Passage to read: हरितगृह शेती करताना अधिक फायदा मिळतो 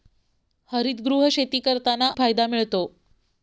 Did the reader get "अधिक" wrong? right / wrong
wrong